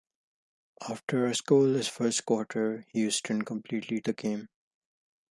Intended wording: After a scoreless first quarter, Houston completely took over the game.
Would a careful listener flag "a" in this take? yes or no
no